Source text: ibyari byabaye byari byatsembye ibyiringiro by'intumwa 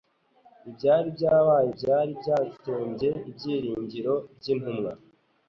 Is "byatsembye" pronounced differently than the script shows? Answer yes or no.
no